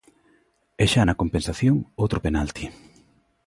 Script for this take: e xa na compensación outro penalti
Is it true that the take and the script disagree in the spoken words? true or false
false